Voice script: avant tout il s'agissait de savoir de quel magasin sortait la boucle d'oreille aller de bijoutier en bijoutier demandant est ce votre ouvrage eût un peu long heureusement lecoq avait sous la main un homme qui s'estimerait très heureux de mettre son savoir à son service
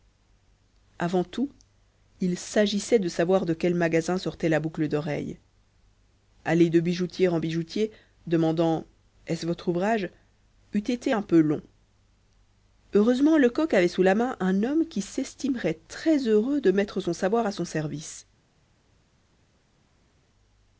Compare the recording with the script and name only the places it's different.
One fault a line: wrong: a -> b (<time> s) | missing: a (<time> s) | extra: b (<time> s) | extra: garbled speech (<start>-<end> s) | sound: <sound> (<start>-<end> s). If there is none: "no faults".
extra: été (10.8 s)